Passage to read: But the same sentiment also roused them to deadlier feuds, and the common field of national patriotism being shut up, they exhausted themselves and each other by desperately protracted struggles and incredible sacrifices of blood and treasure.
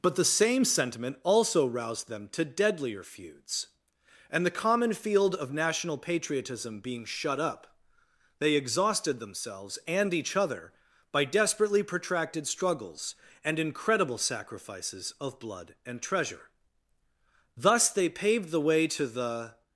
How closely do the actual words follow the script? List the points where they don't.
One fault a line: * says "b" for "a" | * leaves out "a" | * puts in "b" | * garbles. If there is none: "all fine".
* puts in "Thus they paved the way to the"